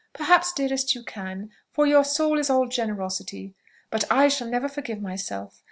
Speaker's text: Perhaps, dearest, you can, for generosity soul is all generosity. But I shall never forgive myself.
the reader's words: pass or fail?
fail